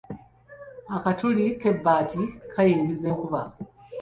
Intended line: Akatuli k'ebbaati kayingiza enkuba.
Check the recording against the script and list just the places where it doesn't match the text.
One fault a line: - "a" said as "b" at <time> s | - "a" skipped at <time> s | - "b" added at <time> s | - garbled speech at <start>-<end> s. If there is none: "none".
none